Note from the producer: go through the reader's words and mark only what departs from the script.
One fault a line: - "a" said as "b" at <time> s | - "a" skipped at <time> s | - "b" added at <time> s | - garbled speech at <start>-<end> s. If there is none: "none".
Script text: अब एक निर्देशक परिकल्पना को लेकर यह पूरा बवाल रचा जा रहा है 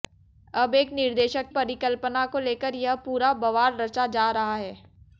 none